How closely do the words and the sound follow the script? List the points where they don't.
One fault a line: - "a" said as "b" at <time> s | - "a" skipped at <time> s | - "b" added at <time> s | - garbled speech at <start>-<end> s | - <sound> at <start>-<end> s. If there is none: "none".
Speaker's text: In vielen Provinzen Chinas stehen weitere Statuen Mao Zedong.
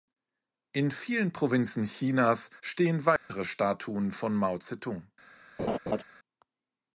- dropout at 3.2-3.3 s
- "von" added at 4.1 s
- laugh at 5.6-6.0 s